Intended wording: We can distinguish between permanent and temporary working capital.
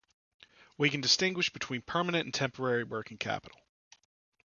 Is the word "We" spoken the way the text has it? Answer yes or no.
yes